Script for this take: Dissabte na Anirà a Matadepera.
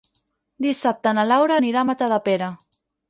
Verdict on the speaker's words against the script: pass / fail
fail